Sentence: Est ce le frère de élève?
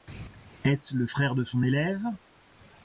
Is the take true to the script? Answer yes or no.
no